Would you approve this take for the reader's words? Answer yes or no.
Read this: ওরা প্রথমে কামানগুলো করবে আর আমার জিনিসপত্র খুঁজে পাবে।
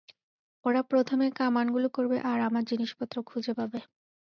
yes